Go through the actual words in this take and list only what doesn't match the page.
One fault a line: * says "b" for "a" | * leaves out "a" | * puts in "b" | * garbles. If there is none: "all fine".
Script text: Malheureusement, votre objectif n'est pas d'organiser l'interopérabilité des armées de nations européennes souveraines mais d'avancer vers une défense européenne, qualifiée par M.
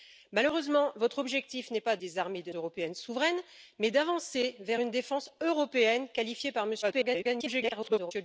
* leaves out "d'organiser l'interopérabilité"
* leaves out "nations"
* garbles